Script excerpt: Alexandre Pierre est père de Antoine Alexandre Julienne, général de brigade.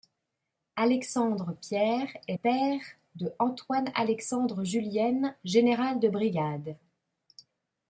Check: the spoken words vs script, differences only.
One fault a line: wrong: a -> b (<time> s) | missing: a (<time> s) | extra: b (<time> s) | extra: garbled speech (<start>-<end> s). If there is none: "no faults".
no faults